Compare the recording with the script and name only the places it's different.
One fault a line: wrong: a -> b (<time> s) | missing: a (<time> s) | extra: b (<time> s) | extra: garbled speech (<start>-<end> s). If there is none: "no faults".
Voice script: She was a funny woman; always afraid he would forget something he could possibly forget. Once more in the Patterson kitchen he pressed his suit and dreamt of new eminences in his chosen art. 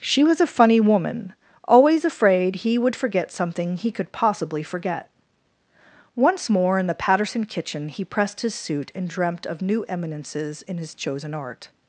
no faults